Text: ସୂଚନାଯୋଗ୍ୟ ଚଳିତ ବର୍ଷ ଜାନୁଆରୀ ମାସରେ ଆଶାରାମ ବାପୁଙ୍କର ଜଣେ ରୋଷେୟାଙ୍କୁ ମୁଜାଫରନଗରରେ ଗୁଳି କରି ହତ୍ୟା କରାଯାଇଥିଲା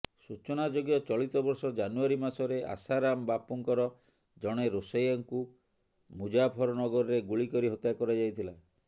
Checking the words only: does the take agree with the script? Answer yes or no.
yes